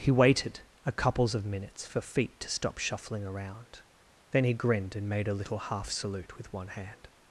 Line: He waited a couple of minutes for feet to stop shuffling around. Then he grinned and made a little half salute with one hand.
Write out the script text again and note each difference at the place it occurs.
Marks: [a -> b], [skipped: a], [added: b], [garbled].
He waited a [couple -> couples] of minutes for feet to stop shuffling around. Then he grinned and made a little half salute with one hand.